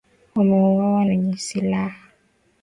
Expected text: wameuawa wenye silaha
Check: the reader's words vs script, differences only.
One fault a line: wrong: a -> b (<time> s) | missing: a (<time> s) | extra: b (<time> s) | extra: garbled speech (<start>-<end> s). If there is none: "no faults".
no faults